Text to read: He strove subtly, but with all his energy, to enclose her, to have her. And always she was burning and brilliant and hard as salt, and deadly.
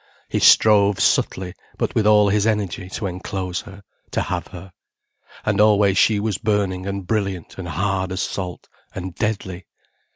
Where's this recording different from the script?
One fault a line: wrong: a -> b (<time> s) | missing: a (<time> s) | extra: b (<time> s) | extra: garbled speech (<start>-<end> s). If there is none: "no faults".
no faults